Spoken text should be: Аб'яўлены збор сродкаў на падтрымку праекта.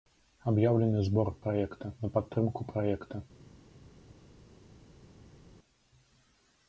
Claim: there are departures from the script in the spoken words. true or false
true